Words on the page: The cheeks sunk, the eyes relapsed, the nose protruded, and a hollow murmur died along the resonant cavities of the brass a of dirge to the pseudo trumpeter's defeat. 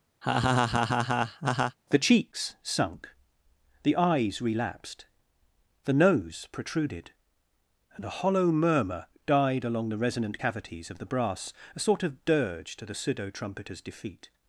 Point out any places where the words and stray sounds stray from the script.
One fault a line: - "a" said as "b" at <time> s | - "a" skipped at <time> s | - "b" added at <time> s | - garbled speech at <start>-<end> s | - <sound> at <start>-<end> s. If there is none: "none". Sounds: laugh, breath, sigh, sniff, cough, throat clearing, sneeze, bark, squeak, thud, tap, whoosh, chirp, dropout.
- laugh at 0.2-1.8 s
- "sort" added at 11.8 s